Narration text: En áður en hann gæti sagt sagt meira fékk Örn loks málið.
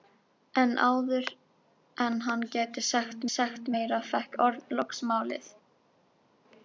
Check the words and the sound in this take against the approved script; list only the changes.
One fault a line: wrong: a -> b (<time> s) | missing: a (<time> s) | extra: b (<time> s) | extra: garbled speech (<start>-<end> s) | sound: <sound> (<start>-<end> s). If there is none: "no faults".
no faults